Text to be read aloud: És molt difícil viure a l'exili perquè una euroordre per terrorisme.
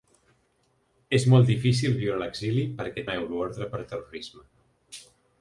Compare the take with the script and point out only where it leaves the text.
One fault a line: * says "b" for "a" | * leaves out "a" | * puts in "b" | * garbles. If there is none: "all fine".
all fine